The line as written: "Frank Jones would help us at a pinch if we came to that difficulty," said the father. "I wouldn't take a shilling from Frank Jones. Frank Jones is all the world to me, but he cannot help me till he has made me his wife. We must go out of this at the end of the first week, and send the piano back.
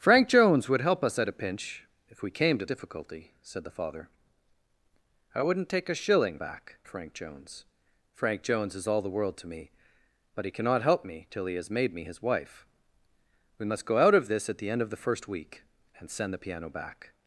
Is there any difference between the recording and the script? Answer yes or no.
yes